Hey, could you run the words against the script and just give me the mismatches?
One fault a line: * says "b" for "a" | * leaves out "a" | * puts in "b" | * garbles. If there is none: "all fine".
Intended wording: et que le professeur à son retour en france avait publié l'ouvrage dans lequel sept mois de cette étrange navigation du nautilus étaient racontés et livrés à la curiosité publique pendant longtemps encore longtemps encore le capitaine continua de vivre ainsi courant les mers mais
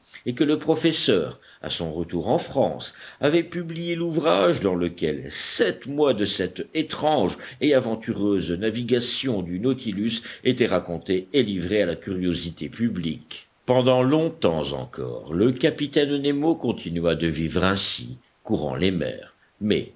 * puts in "et aventureuse"
* leaves out "longtemps encore"
* puts in "nemo"